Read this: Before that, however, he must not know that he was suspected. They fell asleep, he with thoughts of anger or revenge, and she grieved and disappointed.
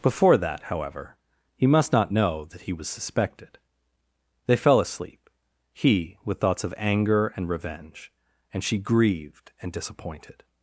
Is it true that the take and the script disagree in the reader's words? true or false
true